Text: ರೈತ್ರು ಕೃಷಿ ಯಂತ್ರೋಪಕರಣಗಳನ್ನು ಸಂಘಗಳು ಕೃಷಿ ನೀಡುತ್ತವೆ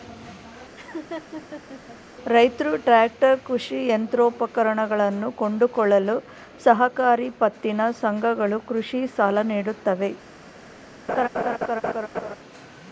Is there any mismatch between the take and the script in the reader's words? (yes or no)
yes